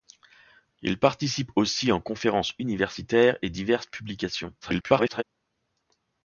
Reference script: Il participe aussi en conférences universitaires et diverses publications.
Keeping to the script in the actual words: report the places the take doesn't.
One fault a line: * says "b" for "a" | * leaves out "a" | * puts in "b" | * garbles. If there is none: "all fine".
* garbles